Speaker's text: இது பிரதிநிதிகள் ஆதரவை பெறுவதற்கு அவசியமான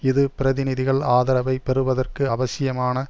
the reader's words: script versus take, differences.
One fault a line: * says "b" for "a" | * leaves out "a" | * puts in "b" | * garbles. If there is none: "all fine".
all fine